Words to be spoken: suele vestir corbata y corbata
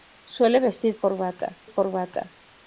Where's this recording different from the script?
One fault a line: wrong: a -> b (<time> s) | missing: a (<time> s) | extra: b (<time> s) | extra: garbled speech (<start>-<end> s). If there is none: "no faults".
no faults